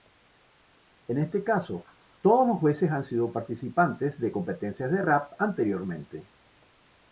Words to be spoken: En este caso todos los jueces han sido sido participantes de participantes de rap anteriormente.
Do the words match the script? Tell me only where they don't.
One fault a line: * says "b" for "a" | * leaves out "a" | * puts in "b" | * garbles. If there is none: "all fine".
* leaves out "sido"
* says "competencias" for "participantes"